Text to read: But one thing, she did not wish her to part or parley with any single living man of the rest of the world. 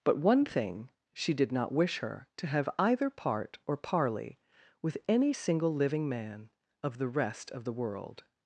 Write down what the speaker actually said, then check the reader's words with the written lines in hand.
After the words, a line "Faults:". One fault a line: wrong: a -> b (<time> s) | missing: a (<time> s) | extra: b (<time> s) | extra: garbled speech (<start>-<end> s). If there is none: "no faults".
But one thing, she did not wish her to have either part or parley with any single living man of the rest of the world.
Faults:
extra: have either (2.5 s)